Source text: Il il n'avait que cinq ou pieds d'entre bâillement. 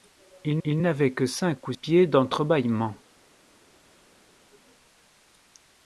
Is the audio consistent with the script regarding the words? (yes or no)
yes